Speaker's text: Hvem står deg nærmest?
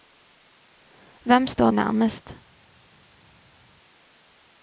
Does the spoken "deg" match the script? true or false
false